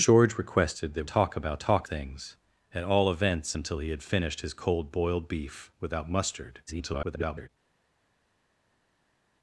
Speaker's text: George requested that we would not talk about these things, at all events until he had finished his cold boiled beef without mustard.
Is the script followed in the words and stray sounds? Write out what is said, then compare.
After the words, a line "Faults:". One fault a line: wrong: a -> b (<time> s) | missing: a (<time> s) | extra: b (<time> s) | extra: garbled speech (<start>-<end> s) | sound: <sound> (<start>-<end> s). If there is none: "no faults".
George requested that talk about talk things, at all events until he had finished his cold boiled beef without mustard. [garbled]
Faults:
missing: we would not (1.1 s)
wrong: these -> talk (1.6 s)
extra: garbled speech (6.7-7.5 s)